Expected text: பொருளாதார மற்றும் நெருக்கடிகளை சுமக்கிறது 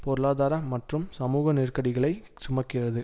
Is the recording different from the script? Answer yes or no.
yes